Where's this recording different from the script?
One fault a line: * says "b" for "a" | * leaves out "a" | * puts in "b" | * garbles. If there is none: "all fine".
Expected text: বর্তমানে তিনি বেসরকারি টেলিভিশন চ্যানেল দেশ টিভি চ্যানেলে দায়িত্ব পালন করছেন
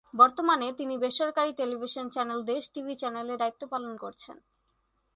all fine